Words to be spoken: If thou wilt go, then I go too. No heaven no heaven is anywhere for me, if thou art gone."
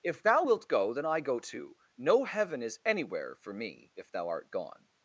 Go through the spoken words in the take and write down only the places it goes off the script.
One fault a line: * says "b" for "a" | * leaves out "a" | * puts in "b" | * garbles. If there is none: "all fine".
* leaves out "no heaven"